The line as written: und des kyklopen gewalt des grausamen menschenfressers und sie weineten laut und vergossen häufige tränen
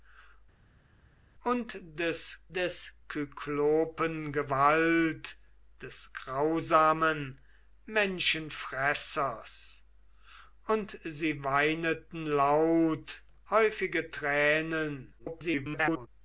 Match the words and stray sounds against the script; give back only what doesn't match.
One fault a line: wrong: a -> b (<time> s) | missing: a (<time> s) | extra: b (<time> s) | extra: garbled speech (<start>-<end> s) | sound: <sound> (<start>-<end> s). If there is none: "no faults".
extra: des (2.6 s)
missing: und vergossen (13.2 s)
extra: garbled speech (15.2-16.1 s)